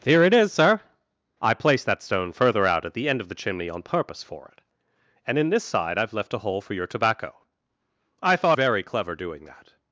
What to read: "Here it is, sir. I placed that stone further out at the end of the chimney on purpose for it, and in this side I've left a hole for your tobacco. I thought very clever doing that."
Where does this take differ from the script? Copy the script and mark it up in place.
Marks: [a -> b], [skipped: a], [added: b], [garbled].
"Here it is, sir. I placed that stone further out at the end of the chimney on purpose for it, and in this side I've left a hole for your tobacco. I thought very clever doing that."